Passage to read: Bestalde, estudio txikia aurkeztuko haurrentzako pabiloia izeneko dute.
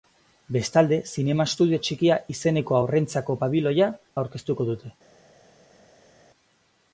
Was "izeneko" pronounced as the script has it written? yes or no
no